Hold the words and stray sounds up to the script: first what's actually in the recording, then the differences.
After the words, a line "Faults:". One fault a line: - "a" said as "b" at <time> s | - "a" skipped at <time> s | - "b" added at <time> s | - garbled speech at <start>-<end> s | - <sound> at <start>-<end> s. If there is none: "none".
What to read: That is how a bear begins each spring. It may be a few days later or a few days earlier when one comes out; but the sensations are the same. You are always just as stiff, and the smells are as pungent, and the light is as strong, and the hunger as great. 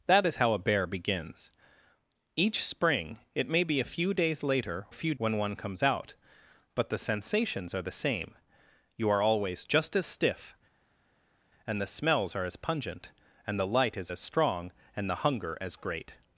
That is how a bear begins each spring. It may be a few days later a few when one comes out; but the sensations are the same. You are always just as stiff, and the smells are as pungent, and the light is as strong, and the hunger as great.
Faults:
- "or" skipped at 4.9 s
- "days earlier" skipped at 5.1 s